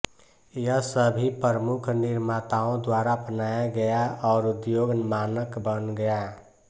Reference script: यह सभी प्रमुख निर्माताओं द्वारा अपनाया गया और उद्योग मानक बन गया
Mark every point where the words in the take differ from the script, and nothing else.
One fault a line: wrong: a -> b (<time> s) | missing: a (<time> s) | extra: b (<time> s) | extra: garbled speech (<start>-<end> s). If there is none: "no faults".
no faults